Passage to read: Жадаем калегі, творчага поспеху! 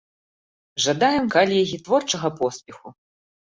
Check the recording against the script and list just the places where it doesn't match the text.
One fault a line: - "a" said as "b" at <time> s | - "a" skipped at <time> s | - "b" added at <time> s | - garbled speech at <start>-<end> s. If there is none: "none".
none